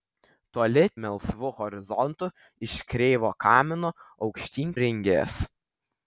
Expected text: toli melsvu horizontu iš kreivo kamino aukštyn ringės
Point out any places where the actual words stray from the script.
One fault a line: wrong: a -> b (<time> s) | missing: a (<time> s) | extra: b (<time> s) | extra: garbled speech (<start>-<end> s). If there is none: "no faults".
no faults